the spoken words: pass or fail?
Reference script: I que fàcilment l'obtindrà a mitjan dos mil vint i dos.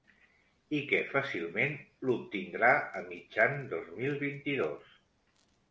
pass